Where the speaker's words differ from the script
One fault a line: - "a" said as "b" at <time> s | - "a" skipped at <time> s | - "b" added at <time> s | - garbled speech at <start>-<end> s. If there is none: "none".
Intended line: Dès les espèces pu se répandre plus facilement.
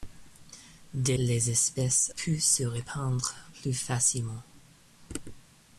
none